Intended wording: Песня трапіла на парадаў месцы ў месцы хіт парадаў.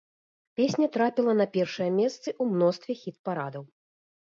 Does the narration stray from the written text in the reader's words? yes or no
yes